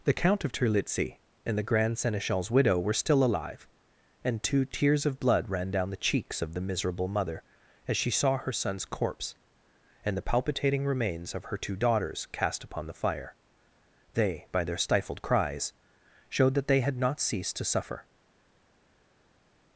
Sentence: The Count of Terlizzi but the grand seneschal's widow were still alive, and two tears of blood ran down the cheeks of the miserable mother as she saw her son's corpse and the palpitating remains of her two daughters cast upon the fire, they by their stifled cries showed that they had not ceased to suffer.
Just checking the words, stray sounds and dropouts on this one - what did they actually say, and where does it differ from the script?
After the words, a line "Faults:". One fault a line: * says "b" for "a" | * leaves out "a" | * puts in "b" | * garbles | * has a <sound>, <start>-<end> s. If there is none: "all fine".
The Count of Terlizzi and the grand seneschal's widow were still alive, and two tears of blood ran down the cheeks of the miserable mother as she saw her son's corpse and the palpitating remains of her two daughters cast upon the fire, they by their stifled cries showed that they had not ceased to suffer.
Faults:
* says "and" for "but"